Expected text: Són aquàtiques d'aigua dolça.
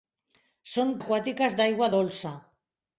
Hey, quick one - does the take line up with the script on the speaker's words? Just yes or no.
yes